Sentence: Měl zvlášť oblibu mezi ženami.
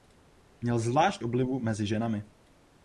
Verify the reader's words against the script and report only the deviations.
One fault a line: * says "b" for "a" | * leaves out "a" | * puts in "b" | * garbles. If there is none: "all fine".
all fine